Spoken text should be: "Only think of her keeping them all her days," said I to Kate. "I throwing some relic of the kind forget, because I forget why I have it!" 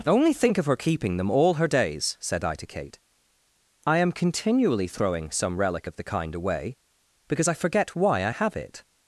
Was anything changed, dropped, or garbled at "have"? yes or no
no